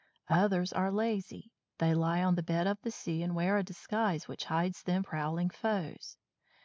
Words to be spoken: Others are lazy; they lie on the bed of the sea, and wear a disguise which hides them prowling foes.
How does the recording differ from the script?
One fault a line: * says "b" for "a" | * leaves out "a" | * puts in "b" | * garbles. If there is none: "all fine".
all fine